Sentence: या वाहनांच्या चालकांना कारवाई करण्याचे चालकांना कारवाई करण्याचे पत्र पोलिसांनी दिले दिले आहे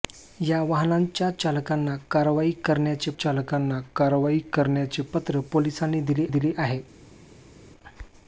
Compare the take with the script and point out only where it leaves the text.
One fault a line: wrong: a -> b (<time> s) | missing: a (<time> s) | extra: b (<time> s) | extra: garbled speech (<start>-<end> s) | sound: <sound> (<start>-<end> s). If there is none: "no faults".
no faults